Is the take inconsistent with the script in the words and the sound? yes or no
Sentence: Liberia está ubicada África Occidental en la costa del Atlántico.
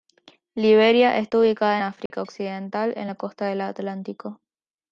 yes